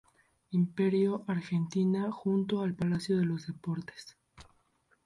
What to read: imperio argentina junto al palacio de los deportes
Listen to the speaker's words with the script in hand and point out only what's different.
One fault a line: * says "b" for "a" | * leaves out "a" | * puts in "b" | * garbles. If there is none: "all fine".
all fine